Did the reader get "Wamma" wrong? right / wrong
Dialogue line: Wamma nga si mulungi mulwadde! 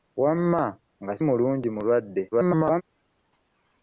right